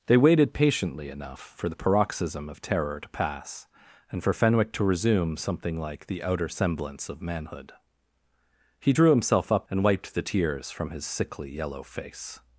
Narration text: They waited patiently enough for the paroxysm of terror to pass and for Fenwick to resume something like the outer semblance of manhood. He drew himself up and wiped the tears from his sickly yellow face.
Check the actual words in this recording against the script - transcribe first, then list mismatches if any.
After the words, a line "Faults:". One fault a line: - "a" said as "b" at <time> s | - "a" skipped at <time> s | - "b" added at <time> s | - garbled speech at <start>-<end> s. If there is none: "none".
They waited patiently enough for the paroxysm of terror to pass and for Fenwick to resume something like the outer semblance of manhood. He drew himself up and wiped the tears from his sickly yellow face.
Faults:
none